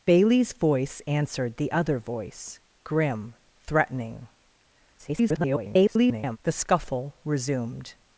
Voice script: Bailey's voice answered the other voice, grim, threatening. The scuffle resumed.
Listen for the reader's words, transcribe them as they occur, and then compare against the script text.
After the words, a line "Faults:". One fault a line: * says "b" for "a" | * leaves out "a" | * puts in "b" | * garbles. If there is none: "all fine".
Bailey's voice answered the other voice, grim, threatening. [garbled] The scuffle resumed.
Faults:
* garbles